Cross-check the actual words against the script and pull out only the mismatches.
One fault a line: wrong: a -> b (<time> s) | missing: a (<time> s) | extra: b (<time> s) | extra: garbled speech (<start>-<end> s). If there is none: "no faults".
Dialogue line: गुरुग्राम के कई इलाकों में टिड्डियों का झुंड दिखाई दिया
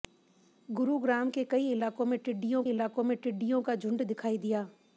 extra: इलाकों में टिड्डियों (2.7 s)